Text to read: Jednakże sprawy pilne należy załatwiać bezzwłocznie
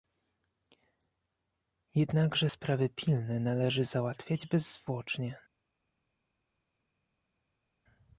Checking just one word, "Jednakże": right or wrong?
right